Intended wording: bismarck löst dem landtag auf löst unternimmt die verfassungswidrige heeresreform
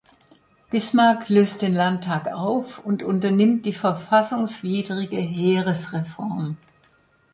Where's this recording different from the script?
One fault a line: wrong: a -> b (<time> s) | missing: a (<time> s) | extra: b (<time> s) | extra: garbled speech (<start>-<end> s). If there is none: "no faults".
wrong: dem -> den (1.6 s)
wrong: löst -> und (2.8 s)